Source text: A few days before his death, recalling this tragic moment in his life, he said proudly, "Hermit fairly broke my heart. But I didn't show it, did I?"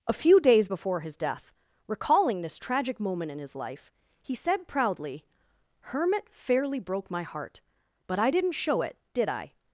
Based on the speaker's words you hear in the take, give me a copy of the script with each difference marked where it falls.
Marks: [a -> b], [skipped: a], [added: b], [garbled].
A few days before his death, recalling this tragic moment in his life, he said proudly, "Hermit fairly broke my heart. But I didn't show it, did I?"